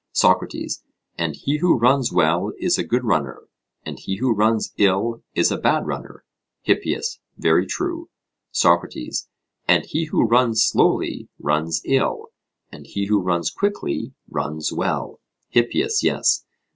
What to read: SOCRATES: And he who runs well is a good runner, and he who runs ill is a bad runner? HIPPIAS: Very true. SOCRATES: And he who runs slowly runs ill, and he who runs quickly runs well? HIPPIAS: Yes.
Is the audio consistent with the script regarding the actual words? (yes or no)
yes